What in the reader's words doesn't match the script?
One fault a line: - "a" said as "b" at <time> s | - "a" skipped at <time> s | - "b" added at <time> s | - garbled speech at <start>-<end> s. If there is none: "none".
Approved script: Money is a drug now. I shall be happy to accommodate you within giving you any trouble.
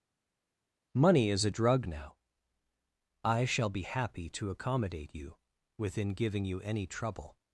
none